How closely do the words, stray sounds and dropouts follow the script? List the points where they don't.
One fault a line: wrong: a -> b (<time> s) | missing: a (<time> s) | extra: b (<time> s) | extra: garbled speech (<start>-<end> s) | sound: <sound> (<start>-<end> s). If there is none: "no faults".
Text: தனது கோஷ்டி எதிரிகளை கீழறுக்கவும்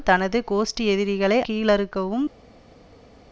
no faults